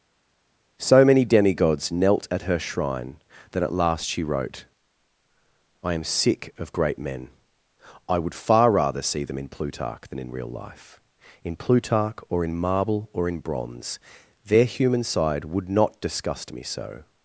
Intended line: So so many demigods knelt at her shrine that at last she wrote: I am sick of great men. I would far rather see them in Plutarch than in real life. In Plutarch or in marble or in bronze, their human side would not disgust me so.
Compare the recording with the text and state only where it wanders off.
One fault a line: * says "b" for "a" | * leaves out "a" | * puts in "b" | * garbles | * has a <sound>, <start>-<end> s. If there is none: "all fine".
* leaves out "so"